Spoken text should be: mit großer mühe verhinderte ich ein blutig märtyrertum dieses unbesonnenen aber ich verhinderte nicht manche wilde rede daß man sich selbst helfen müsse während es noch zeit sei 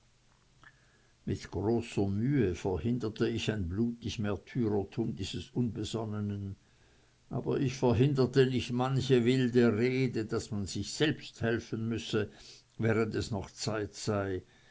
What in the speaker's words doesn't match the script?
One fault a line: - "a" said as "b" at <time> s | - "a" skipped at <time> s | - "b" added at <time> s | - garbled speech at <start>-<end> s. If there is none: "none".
none